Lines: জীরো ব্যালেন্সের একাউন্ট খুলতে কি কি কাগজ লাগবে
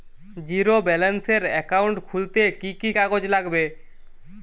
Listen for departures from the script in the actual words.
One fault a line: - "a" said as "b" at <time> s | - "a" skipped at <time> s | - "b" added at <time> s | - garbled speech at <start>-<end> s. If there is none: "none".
none